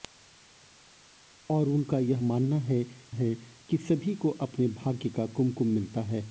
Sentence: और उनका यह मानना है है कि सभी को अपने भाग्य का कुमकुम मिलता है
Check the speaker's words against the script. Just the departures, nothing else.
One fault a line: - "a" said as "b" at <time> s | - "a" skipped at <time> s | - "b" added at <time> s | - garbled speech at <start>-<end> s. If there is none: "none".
none